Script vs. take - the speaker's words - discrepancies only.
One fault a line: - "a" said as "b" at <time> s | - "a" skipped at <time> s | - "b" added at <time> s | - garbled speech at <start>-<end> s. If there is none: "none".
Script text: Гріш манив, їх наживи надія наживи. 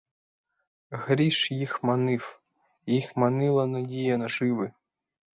- "їх" added at 1.5 s
- "наживи" said as "манила" at 3.2 s